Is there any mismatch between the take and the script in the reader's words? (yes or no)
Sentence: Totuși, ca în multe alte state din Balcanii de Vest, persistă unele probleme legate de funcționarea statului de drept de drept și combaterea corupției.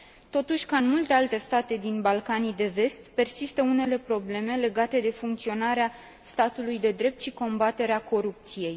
yes